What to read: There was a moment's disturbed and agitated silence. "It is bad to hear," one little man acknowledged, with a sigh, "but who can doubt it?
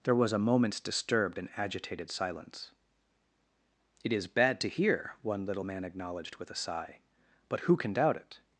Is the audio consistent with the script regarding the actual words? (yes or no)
yes